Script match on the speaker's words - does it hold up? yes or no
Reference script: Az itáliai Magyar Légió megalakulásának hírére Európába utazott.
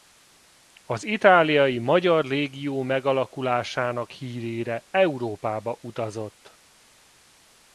yes